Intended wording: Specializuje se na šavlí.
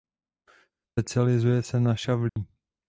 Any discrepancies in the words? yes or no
no